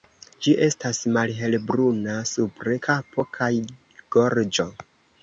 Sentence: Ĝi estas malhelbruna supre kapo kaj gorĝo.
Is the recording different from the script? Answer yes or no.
no